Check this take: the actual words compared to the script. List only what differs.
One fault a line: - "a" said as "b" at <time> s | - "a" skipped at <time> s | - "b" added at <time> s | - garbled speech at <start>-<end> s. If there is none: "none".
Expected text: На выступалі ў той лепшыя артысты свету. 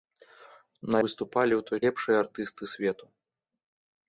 none